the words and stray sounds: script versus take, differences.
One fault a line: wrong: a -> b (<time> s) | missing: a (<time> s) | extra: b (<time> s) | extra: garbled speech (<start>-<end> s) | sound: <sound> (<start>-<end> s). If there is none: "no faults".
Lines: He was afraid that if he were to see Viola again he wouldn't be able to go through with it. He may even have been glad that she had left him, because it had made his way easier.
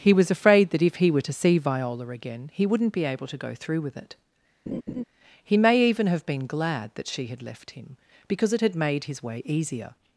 sound: laugh (4.7-5.0 s)